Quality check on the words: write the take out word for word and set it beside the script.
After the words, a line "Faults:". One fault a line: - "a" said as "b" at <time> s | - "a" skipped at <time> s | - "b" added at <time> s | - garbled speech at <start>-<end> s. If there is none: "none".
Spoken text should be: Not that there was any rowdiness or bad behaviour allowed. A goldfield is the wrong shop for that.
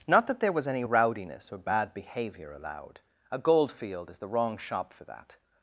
Not that there was any rowdiness or bad behaviour allowed. A goldfield is the wrong shop for that.
Faults:
none